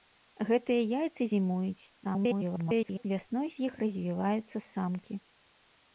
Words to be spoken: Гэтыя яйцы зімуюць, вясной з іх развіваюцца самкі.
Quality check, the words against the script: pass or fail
fail